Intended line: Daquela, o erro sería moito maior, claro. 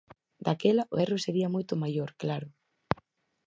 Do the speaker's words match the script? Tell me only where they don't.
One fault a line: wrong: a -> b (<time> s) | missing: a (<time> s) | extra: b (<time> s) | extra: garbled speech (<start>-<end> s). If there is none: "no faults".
no faults